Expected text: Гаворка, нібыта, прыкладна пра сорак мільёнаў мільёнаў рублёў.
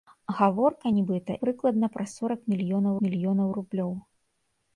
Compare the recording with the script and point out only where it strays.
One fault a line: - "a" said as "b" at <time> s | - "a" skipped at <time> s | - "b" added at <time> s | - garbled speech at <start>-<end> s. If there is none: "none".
none